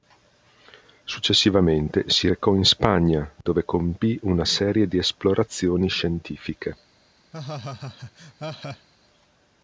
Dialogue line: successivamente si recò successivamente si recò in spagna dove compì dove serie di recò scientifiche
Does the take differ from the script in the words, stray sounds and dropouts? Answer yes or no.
yes